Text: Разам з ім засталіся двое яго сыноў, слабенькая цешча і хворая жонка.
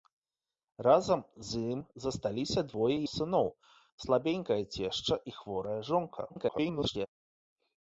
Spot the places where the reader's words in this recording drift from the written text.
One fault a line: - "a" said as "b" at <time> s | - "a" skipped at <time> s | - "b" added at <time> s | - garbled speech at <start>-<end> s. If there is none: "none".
- "яго" skipped at 3.0 s
- garbled speech at 6.3-7.1 s